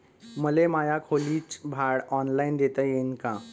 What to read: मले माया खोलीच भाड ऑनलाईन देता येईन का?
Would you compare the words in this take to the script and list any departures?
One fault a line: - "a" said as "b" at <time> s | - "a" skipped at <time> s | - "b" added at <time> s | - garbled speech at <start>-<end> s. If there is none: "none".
none